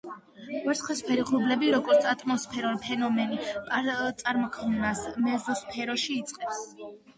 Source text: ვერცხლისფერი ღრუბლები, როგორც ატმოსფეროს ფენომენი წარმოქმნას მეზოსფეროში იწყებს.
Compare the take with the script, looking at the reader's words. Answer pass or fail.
pass